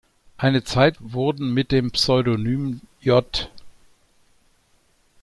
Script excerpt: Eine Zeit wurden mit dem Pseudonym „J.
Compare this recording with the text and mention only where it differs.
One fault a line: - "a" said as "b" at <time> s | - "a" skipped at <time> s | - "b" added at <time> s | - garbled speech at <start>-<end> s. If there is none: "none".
none